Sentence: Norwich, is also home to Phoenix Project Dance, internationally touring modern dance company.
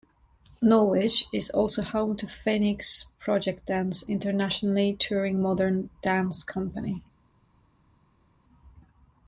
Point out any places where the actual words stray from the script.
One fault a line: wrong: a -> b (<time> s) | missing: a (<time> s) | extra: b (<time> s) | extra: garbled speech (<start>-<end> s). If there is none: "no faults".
no faults